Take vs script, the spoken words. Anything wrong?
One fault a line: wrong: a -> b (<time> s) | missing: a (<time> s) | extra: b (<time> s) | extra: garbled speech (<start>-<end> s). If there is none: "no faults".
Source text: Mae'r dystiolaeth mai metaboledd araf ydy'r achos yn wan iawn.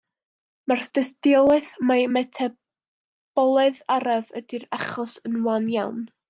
no faults